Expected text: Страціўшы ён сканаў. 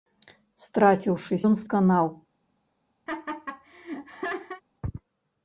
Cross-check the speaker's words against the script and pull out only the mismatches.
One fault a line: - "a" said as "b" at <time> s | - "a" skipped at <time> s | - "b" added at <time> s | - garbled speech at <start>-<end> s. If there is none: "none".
none